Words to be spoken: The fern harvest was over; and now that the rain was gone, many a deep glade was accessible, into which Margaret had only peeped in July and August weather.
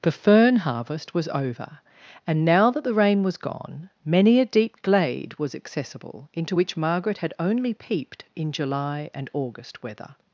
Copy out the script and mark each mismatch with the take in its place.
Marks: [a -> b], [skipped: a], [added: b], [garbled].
The fern harvest was over; and now that the rain was gone, many a deep glade was accessible, into which Margaret had only peeped in July and August weather.